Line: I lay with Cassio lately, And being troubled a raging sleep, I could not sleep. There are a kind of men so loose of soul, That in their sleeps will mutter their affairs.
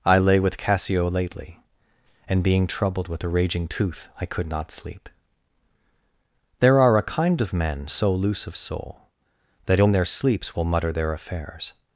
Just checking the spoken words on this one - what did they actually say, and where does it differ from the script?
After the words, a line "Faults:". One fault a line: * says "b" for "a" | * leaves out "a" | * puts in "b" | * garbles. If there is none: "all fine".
I lay with Cassio lately, And being troubled with a raging tooth, I could not sleep. There are a kind of men so loose of soul, That in their sleeps will mutter their affairs.
Faults:
* puts in "with"
* says "tooth" for "sleep"